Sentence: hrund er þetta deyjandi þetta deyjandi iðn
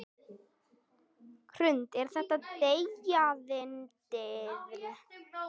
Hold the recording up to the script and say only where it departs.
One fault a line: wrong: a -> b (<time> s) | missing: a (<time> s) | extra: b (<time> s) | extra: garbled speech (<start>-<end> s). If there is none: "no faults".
missing: þetta deyjandi (3.6 s)